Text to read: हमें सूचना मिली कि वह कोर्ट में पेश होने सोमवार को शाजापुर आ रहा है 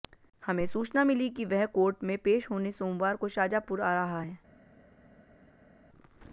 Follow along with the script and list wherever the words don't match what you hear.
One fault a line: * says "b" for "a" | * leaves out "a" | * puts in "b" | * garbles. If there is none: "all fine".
all fine